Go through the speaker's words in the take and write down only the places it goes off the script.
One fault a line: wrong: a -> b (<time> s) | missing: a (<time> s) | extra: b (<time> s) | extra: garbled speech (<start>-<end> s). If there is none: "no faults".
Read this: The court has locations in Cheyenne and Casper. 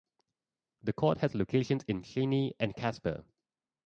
no faults